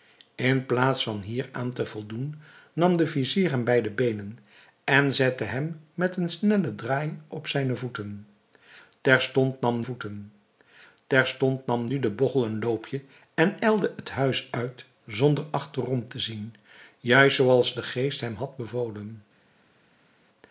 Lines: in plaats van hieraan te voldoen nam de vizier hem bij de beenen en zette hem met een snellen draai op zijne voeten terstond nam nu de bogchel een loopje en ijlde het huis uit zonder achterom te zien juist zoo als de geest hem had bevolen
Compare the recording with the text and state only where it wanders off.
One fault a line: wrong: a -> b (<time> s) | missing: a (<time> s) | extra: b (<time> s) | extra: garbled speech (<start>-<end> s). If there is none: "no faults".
extra: voeten terstond nam (9.8 s)